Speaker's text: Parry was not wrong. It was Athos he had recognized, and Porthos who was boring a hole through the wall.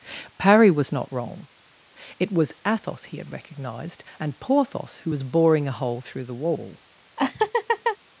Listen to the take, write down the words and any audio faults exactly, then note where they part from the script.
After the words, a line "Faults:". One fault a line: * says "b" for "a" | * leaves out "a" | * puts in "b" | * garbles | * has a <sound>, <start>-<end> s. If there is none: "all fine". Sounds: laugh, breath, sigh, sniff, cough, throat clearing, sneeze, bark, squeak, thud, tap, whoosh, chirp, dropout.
Parry was not wrong. It was Athos he had recognized, and Porthos who was boring a hole through the wall.
Faults:
* has a laugh, 7.2-8.0 s